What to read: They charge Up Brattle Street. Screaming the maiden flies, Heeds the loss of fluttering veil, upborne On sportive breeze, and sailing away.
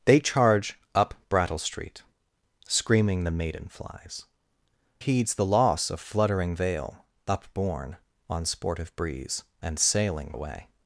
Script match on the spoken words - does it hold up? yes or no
yes